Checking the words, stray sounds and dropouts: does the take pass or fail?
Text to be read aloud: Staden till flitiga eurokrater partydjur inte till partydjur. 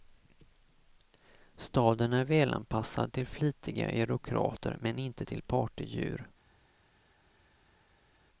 fail